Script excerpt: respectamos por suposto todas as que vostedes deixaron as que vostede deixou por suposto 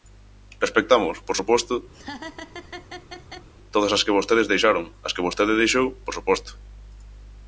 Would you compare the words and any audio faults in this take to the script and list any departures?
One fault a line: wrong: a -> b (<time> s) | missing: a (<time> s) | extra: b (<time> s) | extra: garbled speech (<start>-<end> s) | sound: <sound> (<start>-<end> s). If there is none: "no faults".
sound: laugh (1.9-3.5 s)